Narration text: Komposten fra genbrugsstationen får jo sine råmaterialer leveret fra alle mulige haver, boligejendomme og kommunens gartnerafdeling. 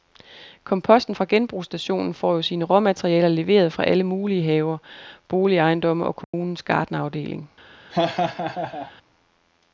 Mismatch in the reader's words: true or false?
false